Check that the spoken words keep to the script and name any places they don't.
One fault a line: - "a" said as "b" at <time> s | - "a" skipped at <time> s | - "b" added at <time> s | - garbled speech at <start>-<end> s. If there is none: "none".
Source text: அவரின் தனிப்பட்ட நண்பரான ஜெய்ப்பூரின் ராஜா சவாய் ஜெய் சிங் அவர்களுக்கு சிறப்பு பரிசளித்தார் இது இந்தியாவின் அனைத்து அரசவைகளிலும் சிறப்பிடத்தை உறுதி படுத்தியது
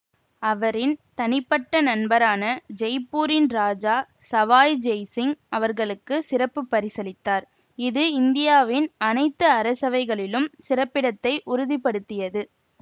none